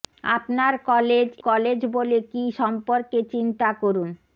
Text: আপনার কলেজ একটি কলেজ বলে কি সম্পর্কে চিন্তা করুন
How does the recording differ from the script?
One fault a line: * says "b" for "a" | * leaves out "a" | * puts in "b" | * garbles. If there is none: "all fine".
* leaves out "একটি"